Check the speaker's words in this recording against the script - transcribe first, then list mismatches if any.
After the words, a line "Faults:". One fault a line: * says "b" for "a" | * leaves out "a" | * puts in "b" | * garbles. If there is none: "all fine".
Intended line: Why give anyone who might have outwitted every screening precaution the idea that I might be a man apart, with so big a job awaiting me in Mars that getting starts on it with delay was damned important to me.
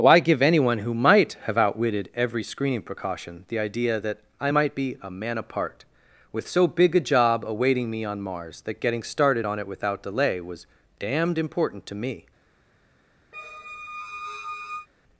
Why give anyone who might have outwitted every screening precaution the idea that I might be a man apart, with so big a job awaiting me on Mars that getting started on it without delay was damned important to me.
Faults:
* says "on" for "in"
* says "started" for "starts"
* says "without" for "with"